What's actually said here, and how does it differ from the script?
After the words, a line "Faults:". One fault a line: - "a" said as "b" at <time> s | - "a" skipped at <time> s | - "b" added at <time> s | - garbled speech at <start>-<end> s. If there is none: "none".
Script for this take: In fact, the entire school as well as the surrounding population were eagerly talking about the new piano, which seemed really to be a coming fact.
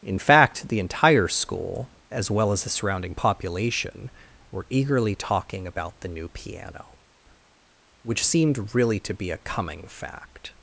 In fact, the entire school as well as the surrounding population were eagerly talking about the new piano, which seemed really to be a coming fact.
Faults:
none